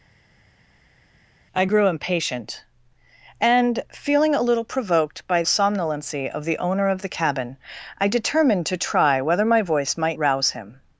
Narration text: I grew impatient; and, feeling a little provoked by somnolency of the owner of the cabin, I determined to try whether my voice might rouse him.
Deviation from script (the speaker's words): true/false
false